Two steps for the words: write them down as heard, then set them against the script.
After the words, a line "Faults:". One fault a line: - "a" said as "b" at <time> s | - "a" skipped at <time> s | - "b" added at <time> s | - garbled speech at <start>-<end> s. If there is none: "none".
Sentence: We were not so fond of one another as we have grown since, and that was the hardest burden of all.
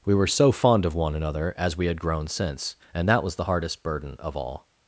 We were so fond of one another as we had grown since, and that was the hardest burden of all.
Faults:
- "not" skipped at 0.3 s
- "have" said as "had" at 1.9 s